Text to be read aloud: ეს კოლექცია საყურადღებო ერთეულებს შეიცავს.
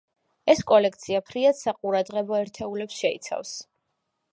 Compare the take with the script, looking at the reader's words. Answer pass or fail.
fail